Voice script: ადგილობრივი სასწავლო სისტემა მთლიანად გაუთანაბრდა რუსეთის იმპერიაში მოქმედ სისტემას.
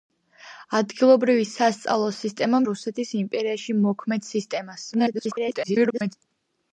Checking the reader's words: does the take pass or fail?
fail